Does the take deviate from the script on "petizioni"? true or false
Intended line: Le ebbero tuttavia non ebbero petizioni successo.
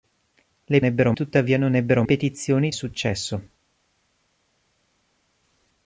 false